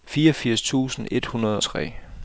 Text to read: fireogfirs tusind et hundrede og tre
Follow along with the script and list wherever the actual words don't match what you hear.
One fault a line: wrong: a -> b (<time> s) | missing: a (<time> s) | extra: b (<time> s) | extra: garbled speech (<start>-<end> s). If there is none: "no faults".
missing: og (1.6 s)